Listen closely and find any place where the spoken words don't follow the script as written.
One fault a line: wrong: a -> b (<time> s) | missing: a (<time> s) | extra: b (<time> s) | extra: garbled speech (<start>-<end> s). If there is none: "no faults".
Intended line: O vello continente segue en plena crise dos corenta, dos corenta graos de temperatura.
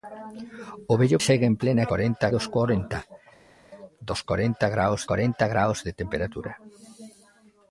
missing: continente (1.2 s)
wrong: crise -> corenta (1.9 s)
extra: corenta graos (5.1 s)